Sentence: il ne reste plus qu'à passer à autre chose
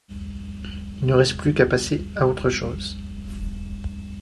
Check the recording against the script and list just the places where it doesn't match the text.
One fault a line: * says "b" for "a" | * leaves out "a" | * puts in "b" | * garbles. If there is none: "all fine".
all fine